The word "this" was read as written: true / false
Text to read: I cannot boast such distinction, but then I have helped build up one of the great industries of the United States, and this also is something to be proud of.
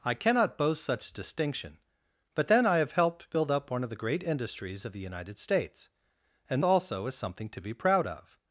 false